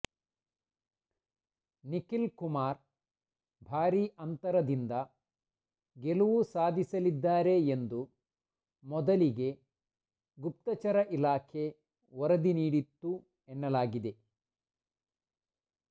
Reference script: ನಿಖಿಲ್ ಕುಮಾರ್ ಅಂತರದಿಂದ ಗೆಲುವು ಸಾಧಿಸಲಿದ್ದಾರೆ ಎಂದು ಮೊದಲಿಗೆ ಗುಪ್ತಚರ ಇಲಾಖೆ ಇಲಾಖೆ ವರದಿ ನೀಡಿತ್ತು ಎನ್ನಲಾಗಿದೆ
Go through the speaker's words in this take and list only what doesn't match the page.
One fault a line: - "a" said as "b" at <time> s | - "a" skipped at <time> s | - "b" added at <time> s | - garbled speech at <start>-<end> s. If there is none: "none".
- "ಭಾರೀ" added at 3.6 s
- "ಇಲಾಖೆ" skipped at 11.7 s